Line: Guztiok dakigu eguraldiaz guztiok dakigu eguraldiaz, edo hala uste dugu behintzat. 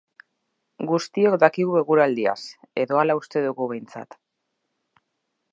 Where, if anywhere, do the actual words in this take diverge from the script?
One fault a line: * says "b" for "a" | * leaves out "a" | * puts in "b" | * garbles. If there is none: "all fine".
* leaves out "guztiok dakigu eguraldiaz"